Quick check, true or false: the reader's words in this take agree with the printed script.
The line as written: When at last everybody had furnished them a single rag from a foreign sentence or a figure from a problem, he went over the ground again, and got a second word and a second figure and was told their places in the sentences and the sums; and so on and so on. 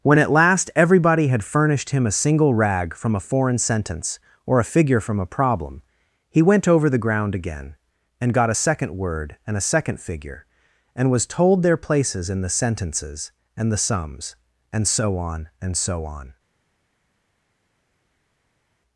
false